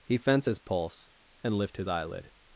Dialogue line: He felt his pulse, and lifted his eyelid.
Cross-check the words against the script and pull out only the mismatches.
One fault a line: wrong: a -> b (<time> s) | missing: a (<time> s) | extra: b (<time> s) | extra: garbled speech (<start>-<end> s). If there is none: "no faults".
wrong: felt -> fence (0.2 s)
wrong: lifted -> lift (1.5 s)